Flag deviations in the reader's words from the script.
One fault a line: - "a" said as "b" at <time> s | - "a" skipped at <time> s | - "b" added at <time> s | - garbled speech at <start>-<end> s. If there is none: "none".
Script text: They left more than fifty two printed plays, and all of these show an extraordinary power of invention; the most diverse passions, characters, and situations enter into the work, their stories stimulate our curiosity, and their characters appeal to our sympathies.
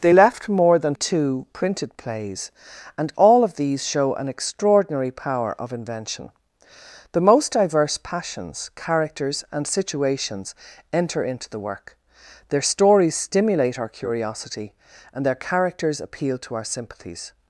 - "fifty" skipped at 0.9 s